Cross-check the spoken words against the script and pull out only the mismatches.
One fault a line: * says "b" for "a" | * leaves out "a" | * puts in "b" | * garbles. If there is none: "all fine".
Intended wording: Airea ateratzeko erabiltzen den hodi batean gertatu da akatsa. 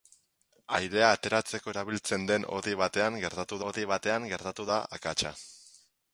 * puts in "hodi batean gertatu"